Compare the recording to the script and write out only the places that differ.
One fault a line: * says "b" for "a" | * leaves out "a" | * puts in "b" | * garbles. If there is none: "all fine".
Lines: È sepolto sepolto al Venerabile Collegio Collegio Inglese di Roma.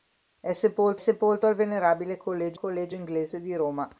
all fine